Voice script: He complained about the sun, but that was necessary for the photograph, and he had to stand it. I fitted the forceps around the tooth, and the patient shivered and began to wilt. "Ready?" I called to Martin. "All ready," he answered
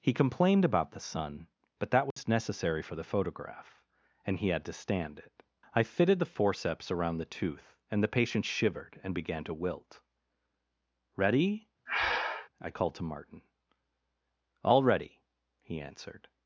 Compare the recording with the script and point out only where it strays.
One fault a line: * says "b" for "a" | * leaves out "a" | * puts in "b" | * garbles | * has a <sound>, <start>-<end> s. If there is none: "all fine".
* has a dropout, 2.1-2.2 s
* has a breath, 11.9-12.5 s